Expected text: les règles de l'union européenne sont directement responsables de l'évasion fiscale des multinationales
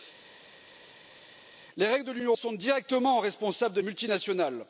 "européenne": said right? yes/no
no